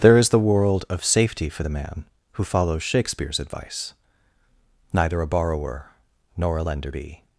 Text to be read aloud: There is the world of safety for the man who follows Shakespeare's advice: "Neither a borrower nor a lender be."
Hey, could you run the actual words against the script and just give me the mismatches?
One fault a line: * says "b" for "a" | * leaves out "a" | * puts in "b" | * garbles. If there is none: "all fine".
all fine